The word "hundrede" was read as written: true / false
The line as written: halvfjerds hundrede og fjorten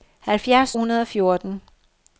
true